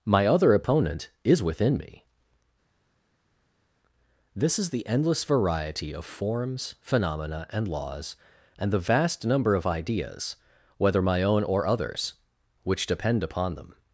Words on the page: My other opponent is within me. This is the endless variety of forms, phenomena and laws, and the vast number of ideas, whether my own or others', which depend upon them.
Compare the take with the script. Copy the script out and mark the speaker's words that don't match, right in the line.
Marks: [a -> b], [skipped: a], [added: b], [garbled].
My other opponent is within me. This is the endless variety of forms, phenomena and laws, and the vast number of ideas, whether my own or others', which depend upon them.